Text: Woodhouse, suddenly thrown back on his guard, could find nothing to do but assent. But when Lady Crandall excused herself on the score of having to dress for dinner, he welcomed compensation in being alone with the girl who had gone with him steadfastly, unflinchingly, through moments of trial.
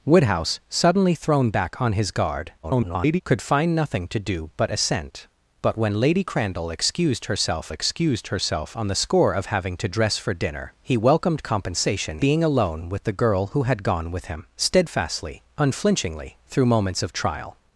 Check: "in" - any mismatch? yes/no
yes